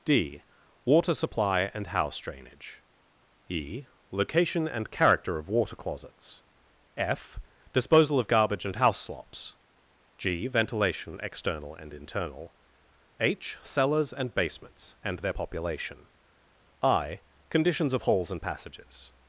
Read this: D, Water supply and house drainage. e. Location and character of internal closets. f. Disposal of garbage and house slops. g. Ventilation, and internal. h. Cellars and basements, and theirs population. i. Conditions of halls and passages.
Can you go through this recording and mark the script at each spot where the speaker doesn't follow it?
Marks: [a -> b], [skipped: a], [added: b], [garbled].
D, Water supply and house drainage. e. Location and character of [internal -> water] closets. f. Disposal of garbage and house slops. g. Ventilation, [added: external] and internal. h. Cellars and basements, and [theirs -> their] population. i. Conditions of halls and passages.